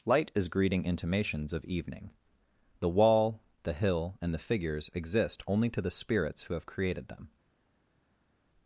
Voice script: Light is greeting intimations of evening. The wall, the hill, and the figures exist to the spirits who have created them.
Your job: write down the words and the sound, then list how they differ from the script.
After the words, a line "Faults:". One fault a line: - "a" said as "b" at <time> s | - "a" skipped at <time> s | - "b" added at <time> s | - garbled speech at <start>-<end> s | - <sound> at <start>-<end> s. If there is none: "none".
Light is greeting intimations of evening. The wall, the hill, and the figures exist only to the spirits who have created them.
Faults:
- "only" added at 5.4 s